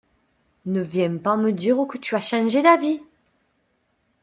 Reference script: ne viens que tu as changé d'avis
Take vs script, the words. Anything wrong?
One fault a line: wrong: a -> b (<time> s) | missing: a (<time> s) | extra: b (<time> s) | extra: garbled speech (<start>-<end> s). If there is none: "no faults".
extra: pas me dire (1.2 s)